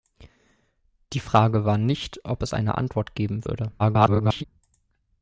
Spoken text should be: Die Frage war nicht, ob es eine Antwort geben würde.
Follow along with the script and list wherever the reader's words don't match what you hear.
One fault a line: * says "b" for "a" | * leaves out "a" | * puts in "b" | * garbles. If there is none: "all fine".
* garbles